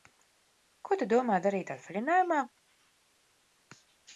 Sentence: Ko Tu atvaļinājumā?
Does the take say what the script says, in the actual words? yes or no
no